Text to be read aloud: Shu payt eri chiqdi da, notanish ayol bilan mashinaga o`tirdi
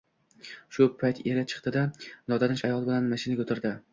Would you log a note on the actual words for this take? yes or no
no